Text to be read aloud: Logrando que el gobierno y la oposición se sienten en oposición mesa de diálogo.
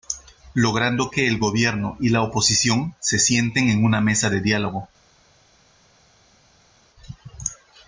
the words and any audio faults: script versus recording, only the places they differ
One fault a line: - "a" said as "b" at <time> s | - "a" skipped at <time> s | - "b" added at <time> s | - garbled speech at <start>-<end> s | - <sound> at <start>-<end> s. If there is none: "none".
- "oposición" said as "una" at 3.8 s